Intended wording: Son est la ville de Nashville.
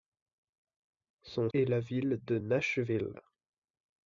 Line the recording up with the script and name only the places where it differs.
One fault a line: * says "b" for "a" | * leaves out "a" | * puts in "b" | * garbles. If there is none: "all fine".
all fine